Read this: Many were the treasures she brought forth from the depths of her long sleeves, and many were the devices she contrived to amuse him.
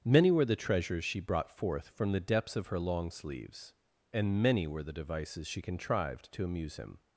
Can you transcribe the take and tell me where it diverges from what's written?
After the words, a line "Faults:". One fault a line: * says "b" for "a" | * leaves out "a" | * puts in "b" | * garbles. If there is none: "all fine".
Many were the treasures she brought forth from the depths of her long sleeves, and many were the devices she contrived to amuse him.
Faults:
all fine